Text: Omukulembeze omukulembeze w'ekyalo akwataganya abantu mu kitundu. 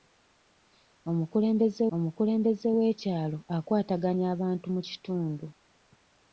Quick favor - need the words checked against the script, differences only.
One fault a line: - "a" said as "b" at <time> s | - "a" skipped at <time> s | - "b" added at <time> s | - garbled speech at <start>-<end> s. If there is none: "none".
none